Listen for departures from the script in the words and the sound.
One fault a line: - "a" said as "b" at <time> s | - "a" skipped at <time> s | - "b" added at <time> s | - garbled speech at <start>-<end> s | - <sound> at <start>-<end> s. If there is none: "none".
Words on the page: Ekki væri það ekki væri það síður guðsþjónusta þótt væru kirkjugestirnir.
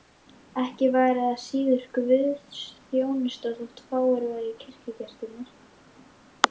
- "ekki væri það" skipped at 1.4 s
- "fáir" added at 3.9 s